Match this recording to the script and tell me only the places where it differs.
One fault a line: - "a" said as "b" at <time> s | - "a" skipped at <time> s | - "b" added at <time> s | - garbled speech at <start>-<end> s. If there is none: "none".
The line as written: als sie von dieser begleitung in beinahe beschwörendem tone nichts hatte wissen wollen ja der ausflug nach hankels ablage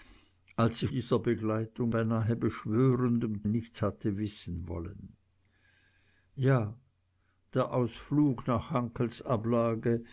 - "von" skipped at 0.9 s
- "in" skipped at 1.9 s
- "tone" skipped at 3.4 s